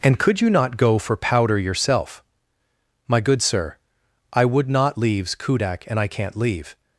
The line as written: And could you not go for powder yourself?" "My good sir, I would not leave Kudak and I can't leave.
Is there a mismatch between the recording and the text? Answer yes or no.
yes